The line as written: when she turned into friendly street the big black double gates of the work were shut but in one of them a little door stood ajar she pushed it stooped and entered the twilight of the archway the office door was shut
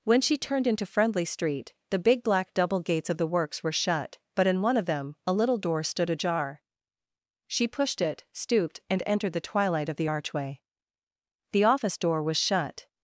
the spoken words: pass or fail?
fail